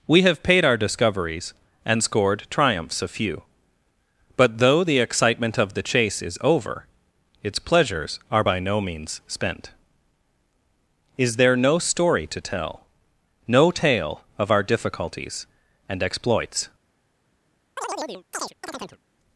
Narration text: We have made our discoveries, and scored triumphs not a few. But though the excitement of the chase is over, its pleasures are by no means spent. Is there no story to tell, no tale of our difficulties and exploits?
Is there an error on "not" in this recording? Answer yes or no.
yes